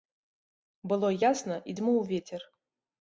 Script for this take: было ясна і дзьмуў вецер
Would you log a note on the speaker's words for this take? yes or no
no